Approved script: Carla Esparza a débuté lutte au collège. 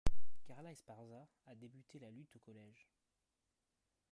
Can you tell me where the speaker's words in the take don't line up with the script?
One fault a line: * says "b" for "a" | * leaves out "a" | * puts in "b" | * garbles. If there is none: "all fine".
* puts in "la"